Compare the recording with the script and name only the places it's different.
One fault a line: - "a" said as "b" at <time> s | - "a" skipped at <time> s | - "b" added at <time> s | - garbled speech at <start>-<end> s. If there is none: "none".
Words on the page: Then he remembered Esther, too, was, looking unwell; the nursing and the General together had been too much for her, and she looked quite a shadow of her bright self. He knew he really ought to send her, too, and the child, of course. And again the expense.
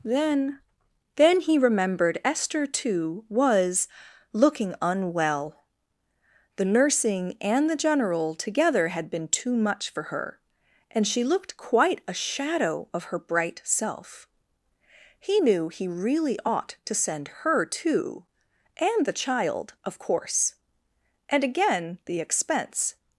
- "then" added at 1.2 s